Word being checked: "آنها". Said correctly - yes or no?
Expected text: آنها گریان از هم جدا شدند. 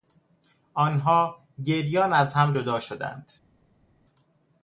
yes